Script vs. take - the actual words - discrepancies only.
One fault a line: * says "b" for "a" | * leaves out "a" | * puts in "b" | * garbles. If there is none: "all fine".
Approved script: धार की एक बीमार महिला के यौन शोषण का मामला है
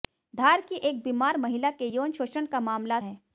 all fine